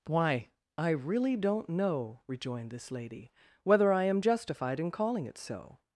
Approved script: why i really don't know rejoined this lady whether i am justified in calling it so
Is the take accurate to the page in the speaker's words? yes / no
yes